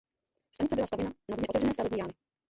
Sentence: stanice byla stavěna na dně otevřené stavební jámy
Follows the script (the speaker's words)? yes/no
yes